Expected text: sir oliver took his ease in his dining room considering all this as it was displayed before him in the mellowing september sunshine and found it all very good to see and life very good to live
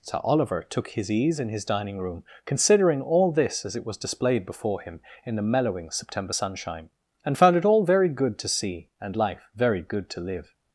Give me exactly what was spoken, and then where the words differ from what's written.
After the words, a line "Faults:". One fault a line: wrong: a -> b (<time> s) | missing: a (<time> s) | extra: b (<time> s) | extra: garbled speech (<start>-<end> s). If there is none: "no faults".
sir oliver took his ease in his dining room considering all this as it was displayed before him in the mellowing september sunshine and found it all very good to see and life very good to live
Faults:
no faults